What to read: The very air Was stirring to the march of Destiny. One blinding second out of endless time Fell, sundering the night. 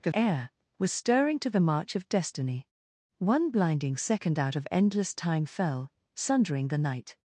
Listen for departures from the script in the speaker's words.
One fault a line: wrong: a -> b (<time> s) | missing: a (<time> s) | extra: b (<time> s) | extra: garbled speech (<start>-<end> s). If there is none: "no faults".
missing: very (0.1 s)